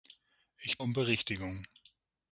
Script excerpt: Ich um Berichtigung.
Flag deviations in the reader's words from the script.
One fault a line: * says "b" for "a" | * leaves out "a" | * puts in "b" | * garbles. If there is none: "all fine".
all fine